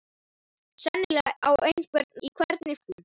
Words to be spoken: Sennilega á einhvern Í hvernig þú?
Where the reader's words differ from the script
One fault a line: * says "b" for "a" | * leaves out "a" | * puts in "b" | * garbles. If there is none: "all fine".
all fine